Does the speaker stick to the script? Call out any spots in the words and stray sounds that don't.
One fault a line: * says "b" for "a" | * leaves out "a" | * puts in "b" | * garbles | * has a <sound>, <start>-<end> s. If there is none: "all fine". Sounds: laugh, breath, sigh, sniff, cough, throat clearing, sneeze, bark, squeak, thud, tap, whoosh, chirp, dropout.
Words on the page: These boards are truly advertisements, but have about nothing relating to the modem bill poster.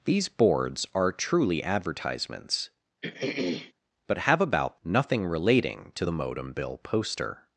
* has a throat clearing, 3.0-3.7 s